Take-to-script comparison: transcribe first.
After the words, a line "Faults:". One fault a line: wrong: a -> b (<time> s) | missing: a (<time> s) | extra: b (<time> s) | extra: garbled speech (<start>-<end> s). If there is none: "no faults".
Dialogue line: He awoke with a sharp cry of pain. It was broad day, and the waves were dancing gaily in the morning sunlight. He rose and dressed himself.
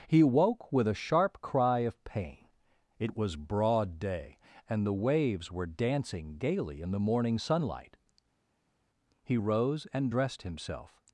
He woke with a sharp cry of pain. It was broad day, and the waves were dancing gaily in the morning sunlight. He rose and dressed himself.
Faults:
wrong: awoke -> woke (0.2 s)